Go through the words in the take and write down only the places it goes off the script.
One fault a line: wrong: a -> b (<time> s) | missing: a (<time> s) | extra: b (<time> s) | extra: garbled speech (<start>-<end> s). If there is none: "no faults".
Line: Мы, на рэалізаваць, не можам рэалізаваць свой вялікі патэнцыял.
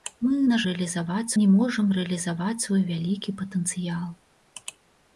no faults